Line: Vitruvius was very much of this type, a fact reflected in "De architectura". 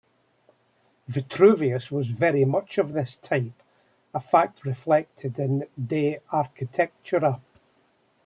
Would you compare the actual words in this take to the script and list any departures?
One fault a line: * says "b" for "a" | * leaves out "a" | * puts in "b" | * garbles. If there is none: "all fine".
all fine